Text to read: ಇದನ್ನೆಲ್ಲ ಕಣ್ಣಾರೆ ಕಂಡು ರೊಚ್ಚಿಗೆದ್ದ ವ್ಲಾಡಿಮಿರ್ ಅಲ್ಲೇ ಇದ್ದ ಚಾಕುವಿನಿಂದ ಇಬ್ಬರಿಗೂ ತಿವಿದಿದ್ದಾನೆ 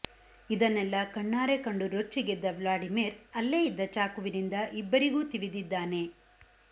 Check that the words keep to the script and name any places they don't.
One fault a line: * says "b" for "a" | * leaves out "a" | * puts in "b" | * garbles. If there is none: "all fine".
all fine